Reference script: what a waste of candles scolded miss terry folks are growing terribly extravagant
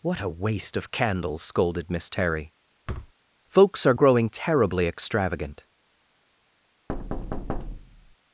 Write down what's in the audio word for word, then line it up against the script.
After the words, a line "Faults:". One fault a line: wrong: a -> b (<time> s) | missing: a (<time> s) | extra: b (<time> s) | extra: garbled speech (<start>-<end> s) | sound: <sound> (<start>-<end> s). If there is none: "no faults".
what a waste of candles scolded miss terry folks are growing terribly extravagant
Faults:
sound: thud (2.9-3.1 s)
sound: thud (6.9-8.2 s)